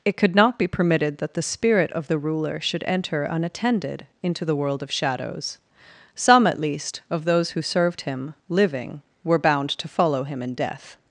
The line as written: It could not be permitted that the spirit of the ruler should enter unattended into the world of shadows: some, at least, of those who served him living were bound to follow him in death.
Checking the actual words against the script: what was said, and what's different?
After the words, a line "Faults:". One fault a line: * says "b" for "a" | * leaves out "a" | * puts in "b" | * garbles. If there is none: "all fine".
It could not be permitted that the spirit of the ruler should enter unattended into the world of shadows: some, at least, of those who served him living were bound to follow him in death.
Faults:
all fine